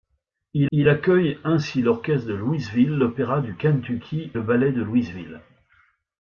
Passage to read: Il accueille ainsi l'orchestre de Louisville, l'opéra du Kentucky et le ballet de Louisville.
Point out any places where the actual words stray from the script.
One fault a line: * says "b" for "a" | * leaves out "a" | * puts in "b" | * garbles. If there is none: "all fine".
* puts in "il"
* leaves out "et"